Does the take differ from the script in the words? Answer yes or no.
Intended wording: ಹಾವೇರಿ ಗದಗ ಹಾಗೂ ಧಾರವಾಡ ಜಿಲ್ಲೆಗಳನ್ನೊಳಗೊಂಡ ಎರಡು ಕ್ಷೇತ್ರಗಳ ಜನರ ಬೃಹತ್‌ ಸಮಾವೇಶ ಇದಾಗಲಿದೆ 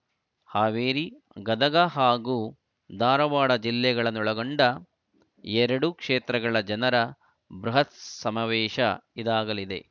no